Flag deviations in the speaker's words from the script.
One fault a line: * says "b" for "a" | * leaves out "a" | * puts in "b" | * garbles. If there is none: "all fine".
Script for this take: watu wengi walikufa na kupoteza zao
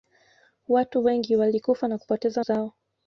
all fine